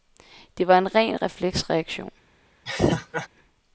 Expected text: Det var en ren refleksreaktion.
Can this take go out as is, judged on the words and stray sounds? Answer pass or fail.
fail